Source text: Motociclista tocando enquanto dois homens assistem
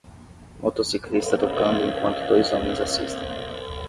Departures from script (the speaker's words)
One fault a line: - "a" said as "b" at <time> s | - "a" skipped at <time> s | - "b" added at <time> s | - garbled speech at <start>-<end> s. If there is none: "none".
none